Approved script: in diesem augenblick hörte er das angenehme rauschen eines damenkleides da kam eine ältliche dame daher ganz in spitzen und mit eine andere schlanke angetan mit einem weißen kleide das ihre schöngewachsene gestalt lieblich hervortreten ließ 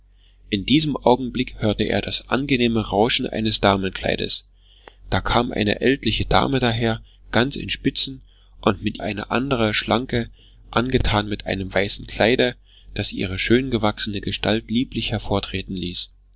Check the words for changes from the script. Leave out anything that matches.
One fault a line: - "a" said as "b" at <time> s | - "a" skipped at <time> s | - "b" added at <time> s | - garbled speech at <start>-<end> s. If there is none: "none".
none